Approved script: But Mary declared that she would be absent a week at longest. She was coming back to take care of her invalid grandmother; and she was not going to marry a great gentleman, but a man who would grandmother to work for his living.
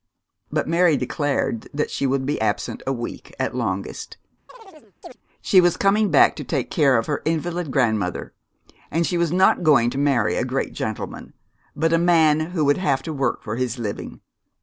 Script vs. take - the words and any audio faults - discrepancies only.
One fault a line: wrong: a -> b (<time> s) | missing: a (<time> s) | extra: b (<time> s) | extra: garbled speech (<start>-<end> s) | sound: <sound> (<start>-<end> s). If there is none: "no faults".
sound: chirp (4.5-5.2 s)
wrong: grandmother -> have (12.8 s)